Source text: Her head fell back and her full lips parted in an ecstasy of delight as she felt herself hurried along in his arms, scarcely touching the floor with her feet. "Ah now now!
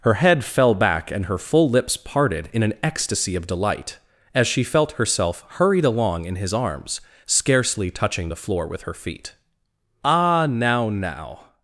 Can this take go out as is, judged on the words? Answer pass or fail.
pass